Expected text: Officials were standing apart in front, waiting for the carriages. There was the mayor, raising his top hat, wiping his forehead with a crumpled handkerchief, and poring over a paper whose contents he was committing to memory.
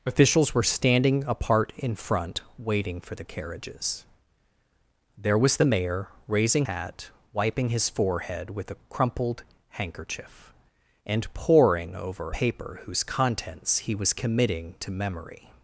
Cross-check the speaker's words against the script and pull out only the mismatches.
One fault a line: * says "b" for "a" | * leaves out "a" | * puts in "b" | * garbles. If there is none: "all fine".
* leaves out "his top"
* leaves out "a"